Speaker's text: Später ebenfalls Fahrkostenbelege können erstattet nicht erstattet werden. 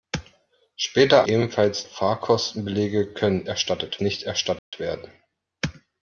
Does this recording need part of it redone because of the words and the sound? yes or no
yes